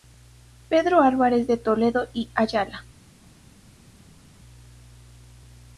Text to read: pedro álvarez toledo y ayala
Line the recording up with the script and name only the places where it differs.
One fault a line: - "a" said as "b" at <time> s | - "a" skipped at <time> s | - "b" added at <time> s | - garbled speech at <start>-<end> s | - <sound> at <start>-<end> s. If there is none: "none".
- "de" added at 1.4 s